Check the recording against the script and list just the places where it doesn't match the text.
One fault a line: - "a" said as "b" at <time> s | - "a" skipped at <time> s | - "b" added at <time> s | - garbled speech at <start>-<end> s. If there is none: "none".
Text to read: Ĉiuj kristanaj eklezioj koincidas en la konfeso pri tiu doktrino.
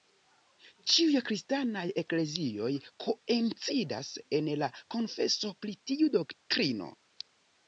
none